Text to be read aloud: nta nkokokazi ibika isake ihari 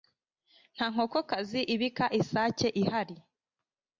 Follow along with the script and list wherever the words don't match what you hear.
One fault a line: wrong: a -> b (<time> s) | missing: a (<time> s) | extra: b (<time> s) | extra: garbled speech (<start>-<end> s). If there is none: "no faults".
no faults